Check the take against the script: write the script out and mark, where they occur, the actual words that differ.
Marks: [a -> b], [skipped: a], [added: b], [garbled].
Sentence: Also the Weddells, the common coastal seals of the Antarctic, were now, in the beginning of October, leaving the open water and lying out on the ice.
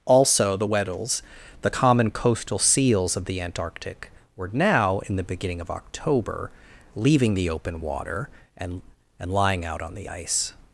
Also the Weddells, the common coastal seals of the Antarctic, were now, in the beginning of October, leaving the open water and [added: and] lying out on the ice.